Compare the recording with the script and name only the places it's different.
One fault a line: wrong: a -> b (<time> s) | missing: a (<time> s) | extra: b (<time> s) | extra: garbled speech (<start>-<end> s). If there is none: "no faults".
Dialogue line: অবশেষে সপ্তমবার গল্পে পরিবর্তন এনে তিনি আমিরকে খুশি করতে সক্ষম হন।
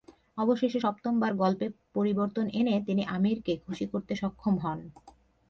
no faults